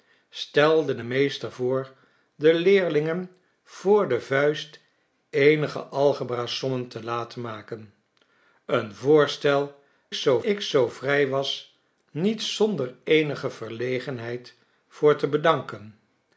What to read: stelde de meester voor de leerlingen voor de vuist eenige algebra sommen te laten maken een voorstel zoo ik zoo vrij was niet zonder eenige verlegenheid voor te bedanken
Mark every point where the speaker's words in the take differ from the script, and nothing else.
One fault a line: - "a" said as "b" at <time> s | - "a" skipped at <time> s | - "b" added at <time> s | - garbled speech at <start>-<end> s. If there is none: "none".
none